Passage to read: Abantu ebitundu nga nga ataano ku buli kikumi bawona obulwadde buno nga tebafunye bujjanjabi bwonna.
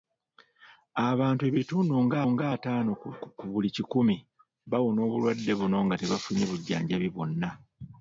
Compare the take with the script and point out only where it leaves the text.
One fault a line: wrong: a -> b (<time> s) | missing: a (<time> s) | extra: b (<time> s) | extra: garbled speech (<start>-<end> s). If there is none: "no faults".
no faults